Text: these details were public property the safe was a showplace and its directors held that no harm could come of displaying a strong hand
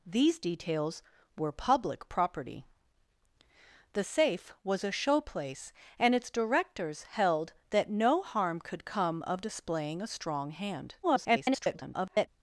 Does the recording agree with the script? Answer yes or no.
no